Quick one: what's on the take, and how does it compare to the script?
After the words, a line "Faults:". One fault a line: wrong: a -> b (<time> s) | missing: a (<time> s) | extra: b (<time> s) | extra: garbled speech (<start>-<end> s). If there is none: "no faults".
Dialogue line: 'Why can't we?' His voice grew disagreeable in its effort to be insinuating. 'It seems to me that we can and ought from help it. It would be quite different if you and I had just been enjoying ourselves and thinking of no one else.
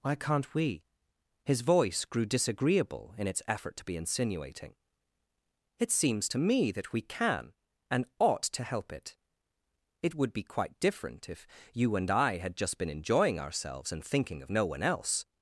'Why can't we?' His voice grew disagreeable in its effort to be insinuating. 'It seems to me that we can and ought to help it. It would be quite different if you and I had just been enjoying ourselves and thinking of no one else.
Faults:
wrong: from -> to (8.4 s)